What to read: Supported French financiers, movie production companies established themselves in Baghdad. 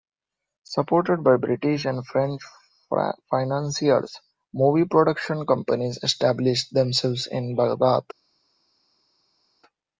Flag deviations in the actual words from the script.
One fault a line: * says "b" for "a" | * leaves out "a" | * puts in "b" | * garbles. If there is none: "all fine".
* puts in "by British and"